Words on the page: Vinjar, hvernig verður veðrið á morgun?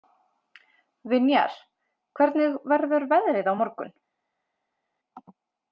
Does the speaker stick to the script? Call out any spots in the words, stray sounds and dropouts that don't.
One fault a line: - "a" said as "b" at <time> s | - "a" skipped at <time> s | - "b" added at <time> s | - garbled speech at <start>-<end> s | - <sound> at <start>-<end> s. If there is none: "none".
none